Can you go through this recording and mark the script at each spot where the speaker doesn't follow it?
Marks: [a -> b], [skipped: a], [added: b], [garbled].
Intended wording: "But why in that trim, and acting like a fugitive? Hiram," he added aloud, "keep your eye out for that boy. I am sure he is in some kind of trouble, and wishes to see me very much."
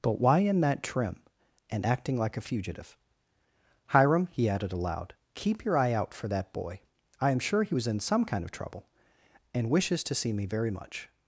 "But why in that trim, and acting like a fugitive? Hiram," he added aloud, "keep your eye out for that boy. I am sure he [is -> was] in some kind of trouble, and wishes to see me very much."